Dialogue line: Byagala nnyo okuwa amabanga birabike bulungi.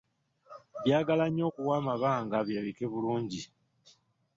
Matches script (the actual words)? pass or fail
pass